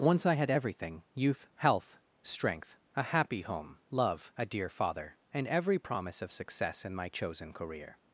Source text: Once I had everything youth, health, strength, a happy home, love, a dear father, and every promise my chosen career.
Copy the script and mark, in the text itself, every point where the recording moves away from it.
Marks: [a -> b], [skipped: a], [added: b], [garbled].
Once I had everything youth, health, strength, a happy home, love, a dear father, and every promise [added: of success in] my chosen career.